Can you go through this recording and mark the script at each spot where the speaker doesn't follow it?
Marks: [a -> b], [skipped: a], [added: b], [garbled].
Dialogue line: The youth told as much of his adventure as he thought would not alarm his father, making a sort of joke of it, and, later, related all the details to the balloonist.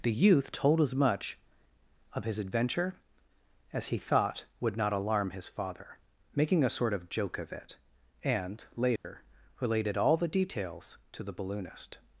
The youth told as much of his adventure as he thought would not alarm his father, making a sort of joke of it, and, later, related all the details to the balloonist.